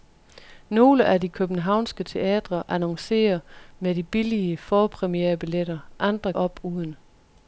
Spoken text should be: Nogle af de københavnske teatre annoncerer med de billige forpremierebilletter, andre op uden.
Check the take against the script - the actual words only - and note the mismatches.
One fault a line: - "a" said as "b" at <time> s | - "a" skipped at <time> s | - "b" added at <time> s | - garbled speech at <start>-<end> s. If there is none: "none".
none